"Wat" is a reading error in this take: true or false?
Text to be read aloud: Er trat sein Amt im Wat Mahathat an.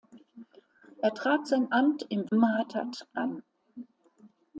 true